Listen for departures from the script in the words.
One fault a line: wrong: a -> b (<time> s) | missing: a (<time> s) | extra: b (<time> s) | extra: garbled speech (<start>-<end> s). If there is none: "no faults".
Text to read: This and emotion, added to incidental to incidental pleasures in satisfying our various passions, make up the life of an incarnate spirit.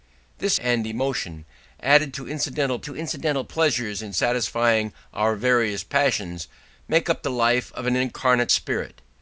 no faults